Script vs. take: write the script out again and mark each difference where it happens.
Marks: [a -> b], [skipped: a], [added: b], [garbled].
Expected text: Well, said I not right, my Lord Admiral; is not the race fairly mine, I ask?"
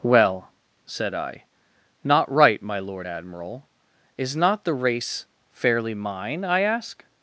Well, said I not right, my Lord Admiral; is not the race fairly mine, I ask?"